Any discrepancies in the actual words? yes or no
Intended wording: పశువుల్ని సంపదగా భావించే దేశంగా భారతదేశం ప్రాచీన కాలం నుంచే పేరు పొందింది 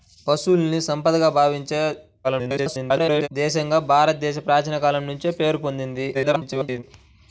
yes